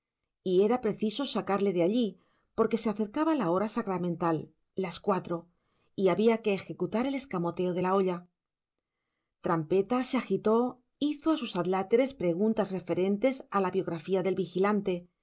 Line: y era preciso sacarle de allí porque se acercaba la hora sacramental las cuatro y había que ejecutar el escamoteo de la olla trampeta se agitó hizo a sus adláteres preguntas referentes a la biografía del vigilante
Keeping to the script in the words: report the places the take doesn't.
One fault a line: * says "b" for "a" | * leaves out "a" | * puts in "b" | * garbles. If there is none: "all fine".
all fine